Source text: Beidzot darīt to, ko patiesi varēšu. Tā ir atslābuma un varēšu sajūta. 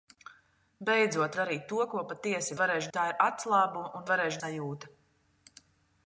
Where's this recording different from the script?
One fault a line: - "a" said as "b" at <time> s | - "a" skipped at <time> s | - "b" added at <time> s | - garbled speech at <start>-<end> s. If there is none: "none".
none